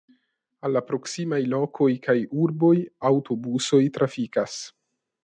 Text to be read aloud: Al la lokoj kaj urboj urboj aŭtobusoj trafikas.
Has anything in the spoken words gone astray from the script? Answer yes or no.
yes